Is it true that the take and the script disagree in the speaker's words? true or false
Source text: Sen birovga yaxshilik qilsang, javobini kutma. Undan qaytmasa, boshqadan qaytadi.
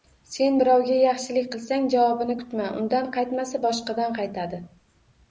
false